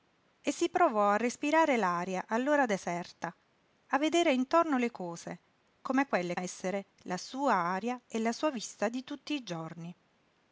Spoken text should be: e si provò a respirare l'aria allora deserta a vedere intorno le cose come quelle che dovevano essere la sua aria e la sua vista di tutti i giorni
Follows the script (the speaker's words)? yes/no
no